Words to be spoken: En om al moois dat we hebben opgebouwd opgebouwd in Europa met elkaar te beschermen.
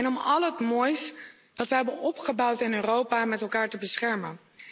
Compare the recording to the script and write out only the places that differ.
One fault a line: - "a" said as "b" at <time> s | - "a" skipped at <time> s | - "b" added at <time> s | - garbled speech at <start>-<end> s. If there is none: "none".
- "het" added at 0.4 s
- "opgebouwd" skipped at 2.6 s